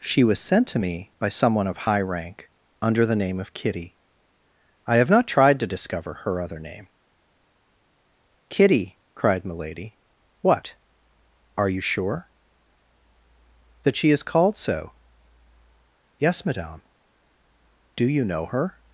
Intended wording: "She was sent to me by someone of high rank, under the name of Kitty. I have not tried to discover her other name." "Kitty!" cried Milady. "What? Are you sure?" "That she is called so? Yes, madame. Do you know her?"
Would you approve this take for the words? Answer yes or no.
yes